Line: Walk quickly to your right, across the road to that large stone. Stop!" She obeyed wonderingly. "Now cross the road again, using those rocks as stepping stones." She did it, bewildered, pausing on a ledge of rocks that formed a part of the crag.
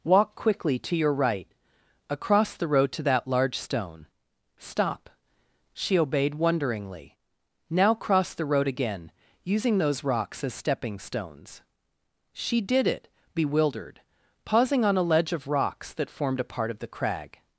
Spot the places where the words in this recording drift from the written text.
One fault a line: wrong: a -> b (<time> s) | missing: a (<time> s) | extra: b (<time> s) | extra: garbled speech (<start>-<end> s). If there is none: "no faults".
no faults